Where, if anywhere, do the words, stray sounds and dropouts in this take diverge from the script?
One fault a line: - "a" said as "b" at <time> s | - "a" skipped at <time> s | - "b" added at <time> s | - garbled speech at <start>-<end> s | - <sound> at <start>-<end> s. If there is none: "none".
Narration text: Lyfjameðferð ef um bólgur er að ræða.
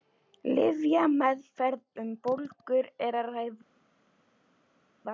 - "ef" skipped at 1.8 s